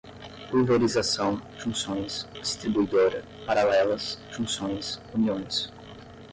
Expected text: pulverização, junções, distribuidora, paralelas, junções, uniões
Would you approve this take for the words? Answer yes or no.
yes